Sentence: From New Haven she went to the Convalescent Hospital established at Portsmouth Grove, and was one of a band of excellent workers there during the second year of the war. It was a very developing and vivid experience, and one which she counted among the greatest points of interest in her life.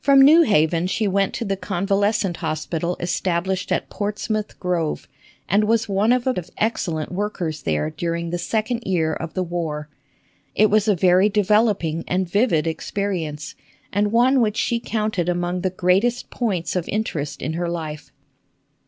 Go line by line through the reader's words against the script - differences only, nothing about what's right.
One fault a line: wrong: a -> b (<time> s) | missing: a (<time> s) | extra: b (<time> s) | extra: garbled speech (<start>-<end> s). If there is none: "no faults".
missing: band (6.3 s)